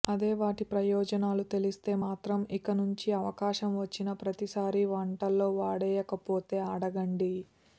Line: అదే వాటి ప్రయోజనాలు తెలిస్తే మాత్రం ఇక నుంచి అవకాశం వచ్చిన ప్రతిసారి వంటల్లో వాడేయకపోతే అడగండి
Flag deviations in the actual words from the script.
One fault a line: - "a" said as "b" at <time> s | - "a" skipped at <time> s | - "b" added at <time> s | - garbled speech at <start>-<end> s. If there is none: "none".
none